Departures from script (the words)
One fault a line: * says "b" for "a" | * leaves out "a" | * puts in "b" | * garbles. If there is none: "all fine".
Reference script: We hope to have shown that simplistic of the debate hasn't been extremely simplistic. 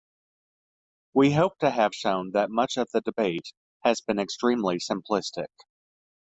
* says "much" for "simplistic"
* says "has" for "hasn't"